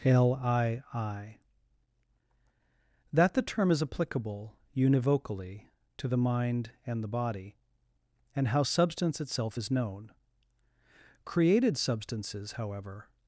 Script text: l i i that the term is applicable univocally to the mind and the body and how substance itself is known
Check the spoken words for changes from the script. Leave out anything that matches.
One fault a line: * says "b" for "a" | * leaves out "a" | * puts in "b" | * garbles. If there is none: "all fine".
* puts in "created substances however"